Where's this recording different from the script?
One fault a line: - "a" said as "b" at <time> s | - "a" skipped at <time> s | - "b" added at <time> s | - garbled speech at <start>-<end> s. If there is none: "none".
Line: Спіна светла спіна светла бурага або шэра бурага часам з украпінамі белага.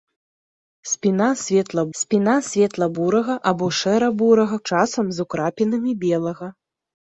none